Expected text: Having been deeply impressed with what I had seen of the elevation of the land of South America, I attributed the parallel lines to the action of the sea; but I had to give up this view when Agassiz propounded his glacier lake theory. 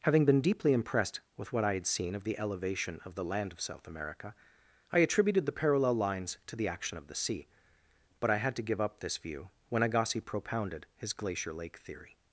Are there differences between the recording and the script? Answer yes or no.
no